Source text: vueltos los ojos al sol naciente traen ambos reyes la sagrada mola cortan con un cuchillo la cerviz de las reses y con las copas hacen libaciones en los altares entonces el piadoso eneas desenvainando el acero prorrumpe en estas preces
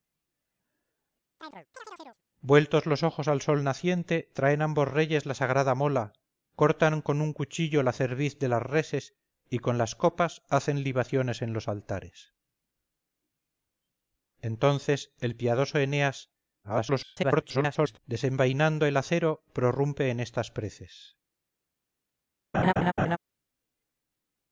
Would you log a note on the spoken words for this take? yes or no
yes